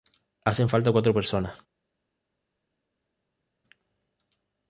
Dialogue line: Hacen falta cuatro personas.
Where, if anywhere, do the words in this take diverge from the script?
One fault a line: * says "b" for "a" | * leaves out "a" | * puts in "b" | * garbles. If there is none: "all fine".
all fine